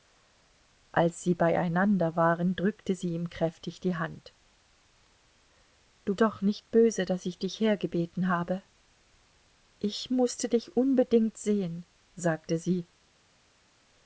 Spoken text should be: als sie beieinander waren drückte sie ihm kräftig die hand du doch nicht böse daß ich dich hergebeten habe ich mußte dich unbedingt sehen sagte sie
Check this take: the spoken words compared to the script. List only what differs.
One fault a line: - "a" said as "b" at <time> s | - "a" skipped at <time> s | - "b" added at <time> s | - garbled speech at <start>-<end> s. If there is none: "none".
none